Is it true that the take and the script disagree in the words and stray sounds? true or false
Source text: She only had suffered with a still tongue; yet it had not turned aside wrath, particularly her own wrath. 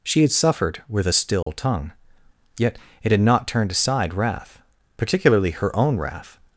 true